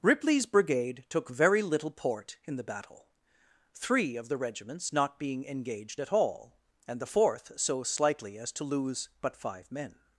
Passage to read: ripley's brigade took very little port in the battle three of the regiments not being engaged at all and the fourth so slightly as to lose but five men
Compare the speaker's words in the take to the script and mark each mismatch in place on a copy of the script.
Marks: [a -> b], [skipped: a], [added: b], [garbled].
ripley's brigade took very little port in the battle three of the regiments not being engaged at all and the fourth so slightly as to lose but five men